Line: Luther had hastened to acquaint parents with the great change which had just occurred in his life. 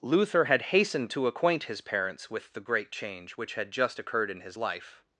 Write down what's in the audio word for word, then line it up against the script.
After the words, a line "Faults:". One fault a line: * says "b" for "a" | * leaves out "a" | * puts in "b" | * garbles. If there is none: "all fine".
Luther had hastened to acquaint his parents with the great change which had just occurred in his life.
Faults:
* puts in "his"